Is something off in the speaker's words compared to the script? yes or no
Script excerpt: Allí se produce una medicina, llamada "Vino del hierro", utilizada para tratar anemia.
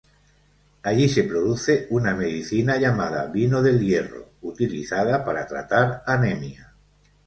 no